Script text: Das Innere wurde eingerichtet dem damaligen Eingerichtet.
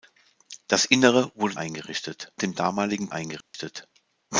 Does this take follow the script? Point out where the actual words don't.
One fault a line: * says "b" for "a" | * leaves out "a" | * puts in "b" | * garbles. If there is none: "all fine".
all fine